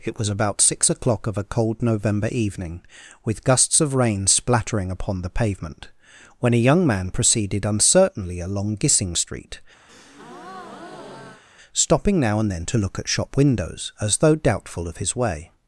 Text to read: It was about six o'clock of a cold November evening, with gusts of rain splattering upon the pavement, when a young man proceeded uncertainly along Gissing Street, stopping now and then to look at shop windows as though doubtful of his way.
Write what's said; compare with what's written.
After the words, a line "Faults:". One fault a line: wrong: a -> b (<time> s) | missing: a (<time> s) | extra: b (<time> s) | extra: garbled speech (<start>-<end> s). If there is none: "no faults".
It was about six o'clock of a cold November evening, with gusts of rain splattering upon the pavement, when a young man proceeded uncertainly along Gissing Street, stopping now and then to look at shop windows as though doubtful of his way.
Faults:
no faults